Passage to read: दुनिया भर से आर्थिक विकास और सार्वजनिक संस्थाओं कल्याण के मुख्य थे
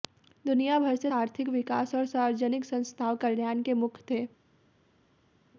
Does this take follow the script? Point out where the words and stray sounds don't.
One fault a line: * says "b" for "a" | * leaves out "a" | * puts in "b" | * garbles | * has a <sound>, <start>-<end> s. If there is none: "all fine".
all fine